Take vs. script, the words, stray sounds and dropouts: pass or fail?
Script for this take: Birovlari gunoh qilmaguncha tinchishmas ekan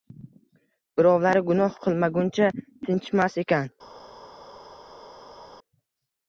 pass